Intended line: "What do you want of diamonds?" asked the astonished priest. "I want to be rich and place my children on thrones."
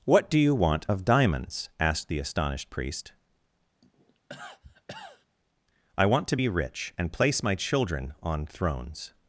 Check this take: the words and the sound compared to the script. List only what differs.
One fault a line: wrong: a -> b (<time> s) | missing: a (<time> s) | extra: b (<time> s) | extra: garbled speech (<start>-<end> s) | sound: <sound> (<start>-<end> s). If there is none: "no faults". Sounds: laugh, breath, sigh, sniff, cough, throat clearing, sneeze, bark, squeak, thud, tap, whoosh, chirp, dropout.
sound: cough (3.8-5.3 s)